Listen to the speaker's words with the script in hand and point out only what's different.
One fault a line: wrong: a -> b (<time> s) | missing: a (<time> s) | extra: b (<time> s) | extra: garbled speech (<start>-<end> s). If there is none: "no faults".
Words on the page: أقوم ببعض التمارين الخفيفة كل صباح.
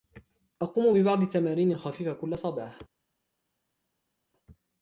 no faults